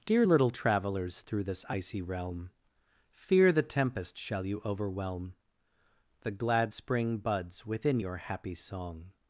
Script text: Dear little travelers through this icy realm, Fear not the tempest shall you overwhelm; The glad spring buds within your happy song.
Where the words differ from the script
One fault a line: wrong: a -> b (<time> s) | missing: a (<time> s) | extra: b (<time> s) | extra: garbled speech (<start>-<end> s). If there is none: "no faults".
missing: not (3.5 s)